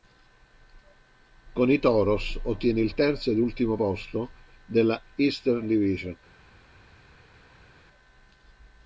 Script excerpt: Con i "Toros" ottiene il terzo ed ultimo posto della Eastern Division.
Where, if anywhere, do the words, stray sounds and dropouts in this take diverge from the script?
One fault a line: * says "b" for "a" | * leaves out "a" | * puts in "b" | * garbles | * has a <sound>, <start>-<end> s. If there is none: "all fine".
all fine